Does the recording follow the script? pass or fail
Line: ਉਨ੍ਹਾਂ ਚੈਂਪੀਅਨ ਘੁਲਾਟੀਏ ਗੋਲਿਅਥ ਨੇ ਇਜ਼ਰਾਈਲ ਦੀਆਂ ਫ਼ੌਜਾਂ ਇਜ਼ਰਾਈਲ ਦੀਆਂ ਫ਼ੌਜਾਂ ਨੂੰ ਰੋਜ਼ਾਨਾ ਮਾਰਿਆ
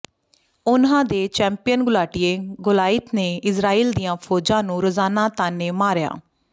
fail